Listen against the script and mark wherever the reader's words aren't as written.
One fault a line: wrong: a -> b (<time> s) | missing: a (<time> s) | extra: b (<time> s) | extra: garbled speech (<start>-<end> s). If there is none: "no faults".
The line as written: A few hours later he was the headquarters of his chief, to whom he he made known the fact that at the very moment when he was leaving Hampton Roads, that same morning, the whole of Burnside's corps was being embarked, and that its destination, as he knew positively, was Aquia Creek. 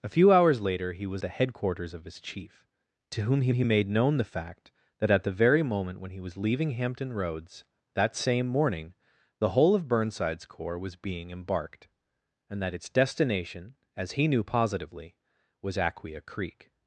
no faults